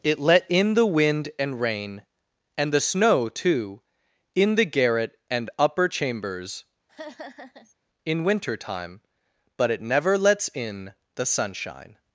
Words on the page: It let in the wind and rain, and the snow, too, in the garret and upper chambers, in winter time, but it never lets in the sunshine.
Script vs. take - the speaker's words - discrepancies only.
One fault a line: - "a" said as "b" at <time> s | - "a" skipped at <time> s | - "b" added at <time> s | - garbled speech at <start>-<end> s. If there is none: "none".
none